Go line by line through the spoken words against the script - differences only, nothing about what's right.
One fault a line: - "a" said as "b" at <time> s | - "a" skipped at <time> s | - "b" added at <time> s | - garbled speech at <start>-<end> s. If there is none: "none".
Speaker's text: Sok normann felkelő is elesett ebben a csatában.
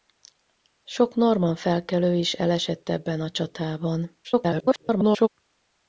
- garbled speech at 4.2-5.3 s